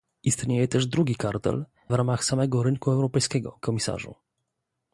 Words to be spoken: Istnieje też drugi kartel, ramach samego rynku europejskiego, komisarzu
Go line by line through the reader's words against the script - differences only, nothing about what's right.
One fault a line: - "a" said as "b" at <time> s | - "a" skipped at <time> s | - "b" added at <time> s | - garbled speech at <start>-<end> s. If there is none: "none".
none